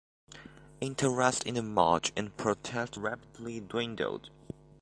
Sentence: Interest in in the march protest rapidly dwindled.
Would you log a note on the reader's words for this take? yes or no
yes